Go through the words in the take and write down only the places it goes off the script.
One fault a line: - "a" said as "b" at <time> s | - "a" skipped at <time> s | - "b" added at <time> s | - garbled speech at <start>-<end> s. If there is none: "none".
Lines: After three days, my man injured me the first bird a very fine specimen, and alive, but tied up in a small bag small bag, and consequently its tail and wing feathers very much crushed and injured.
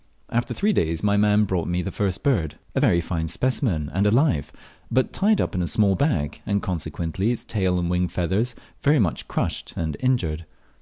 - "injured" said as "brought" at 1.4 s
- "small bag" skipped at 6.4 s